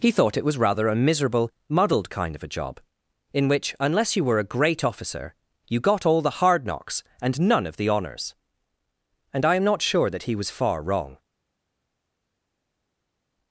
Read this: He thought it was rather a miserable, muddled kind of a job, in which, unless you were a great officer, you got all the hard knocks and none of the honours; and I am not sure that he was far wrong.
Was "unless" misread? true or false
false